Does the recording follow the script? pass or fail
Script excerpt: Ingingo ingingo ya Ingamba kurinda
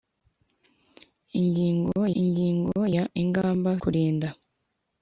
pass